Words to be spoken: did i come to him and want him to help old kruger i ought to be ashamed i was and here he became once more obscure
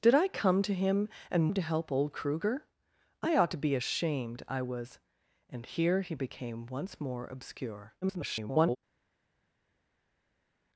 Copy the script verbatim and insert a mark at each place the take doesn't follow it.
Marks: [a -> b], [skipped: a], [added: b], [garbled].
did i come to him and [skipped: want] him to help old kruger i ought to be ashamed i was and here he became once more obscure [garbled]